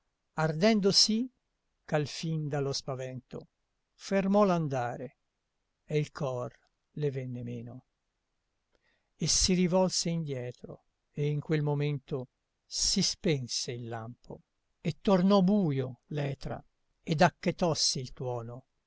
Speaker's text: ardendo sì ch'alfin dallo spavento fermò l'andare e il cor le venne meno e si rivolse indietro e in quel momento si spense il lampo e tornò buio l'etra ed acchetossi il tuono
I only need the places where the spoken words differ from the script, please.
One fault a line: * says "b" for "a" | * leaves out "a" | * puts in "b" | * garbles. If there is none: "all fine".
all fine